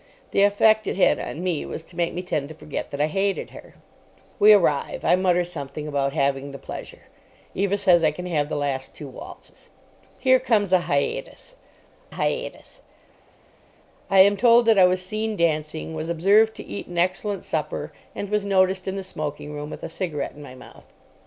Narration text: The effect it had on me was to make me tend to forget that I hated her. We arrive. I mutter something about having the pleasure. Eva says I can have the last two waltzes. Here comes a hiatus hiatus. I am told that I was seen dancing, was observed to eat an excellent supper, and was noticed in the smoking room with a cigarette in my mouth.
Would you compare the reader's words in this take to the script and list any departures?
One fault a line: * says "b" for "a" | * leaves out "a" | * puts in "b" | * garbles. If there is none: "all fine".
all fine